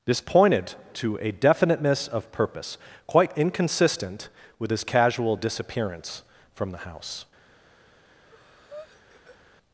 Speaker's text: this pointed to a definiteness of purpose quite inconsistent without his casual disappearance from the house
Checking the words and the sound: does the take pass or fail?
fail